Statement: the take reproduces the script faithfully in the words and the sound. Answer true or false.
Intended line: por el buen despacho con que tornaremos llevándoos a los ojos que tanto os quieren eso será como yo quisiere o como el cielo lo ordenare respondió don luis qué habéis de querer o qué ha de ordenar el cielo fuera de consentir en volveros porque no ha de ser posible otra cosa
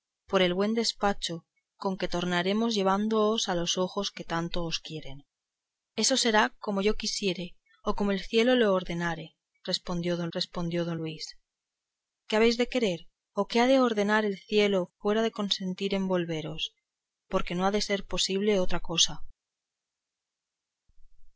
false